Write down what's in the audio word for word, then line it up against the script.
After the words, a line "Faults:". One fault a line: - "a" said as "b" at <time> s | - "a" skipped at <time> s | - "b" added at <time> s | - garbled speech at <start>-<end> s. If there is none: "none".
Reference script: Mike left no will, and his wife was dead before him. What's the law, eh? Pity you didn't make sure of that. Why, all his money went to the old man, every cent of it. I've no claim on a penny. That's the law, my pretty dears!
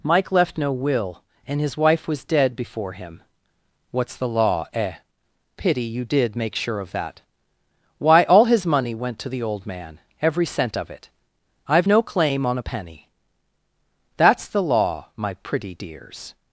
Mike left no will, and his wife was dead before him. What's the law, eh? Pity you did make sure of that. Why, all his money went to the old man, every cent of it. I've no claim on a penny. That's the law, my pretty dears!
Faults:
- "didn't" said as "did" at 6.0 s